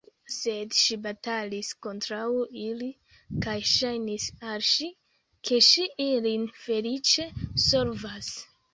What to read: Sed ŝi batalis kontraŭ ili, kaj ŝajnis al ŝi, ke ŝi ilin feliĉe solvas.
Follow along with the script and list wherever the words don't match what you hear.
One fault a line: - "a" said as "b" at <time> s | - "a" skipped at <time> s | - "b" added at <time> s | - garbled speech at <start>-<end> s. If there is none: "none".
none